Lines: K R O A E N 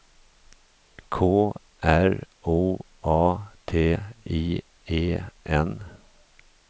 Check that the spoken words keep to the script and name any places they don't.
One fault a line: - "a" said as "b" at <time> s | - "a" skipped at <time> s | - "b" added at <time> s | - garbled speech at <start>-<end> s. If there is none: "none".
- "T I" added at 3.7 s